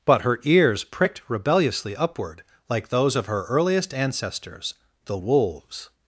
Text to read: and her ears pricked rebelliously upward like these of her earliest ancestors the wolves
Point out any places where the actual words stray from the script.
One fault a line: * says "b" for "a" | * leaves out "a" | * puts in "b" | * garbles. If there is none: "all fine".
* says "but" for "and"
* says "those" for "these"